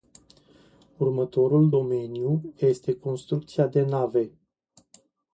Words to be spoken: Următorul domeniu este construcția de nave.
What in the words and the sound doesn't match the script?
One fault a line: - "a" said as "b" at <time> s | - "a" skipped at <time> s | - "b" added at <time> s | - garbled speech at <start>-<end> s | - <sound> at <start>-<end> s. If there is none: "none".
none